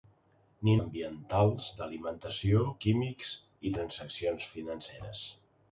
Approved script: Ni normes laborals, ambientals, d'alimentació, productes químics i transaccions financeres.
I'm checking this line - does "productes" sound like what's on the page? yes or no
no